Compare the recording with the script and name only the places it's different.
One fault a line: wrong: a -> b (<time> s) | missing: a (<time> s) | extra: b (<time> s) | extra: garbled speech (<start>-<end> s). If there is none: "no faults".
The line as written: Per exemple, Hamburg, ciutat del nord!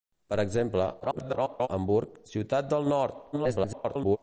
extra: garbled speech (1.0-1.7 s)
extra: garbled speech (3.3-4.2 s)